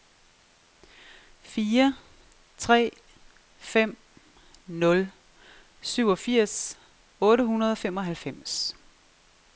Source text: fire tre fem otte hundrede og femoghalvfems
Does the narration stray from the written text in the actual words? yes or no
yes